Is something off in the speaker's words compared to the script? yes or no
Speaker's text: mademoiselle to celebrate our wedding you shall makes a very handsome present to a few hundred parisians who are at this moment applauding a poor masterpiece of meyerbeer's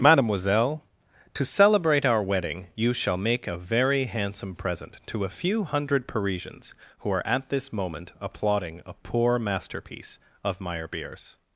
yes